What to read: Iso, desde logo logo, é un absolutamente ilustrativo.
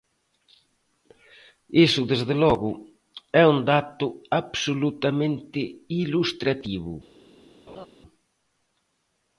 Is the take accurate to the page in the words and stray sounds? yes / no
no